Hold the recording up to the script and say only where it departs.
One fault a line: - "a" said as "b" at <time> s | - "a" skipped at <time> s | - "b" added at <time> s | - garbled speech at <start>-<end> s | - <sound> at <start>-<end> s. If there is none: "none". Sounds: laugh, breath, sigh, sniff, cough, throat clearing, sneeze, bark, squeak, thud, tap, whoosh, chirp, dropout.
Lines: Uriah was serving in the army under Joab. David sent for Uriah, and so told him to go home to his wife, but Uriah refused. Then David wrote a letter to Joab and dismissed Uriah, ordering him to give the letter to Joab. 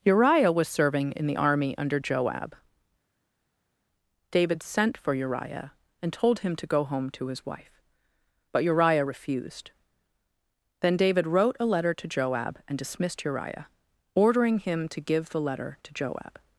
- "so" skipped at 6.1 s